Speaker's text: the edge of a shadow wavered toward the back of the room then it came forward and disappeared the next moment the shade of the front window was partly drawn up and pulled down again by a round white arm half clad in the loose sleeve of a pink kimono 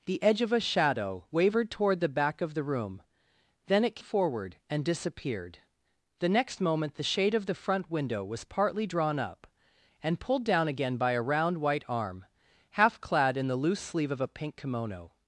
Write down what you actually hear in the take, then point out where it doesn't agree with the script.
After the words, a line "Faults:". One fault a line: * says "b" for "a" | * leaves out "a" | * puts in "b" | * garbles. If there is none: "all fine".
the edge of a shadow wavered toward the back of the room then it forward and disappeared the next moment the shade of the front window was partly drawn up and pulled down again by a round white arm half clad in the loose sleeve of a pink kimono
Faults:
* leaves out "came"